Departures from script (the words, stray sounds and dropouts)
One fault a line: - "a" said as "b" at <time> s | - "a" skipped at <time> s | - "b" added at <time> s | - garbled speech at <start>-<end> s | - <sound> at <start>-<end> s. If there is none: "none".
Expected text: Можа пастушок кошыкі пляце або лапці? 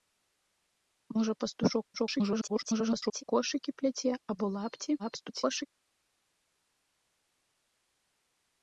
- garbled speech at 1.9-3.2 s
- garbled speech at 5.0-5.7 s